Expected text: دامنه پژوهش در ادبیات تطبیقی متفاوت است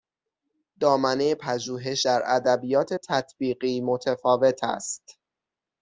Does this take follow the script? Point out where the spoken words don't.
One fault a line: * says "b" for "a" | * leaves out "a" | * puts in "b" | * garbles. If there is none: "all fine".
all fine